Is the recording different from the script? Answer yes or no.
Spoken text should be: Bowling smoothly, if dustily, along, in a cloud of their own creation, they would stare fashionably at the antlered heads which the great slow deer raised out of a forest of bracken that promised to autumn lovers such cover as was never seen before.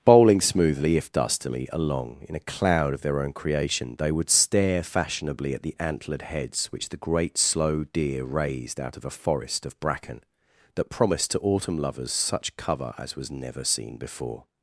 no